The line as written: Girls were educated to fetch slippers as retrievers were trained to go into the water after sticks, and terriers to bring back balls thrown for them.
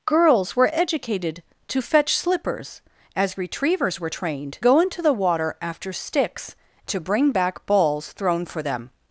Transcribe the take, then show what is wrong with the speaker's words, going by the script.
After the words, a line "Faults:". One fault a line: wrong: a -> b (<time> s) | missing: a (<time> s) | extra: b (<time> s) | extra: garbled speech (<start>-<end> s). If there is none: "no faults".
Girls were educated to fetch slippers as retrievers were trained go into the water after sticks, to bring back balls thrown for them.
Faults:
missing: to (4.6 s)
missing: and terriers (6.5 s)